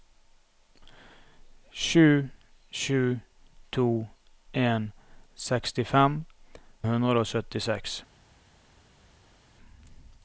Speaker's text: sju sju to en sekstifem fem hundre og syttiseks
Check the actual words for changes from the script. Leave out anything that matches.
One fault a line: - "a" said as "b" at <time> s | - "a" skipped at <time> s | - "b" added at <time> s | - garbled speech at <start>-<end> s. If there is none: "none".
- "fem" skipped at 6.2 s